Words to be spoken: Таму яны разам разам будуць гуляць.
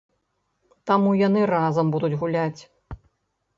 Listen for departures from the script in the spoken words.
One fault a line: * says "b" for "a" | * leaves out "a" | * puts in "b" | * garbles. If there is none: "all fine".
* leaves out "разам"